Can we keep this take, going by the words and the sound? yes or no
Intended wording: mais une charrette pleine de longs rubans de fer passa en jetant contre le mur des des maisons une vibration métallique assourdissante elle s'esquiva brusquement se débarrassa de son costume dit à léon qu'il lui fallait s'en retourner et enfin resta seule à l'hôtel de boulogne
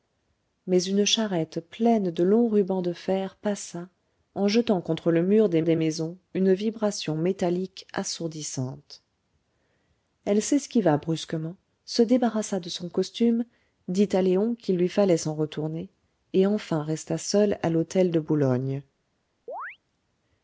no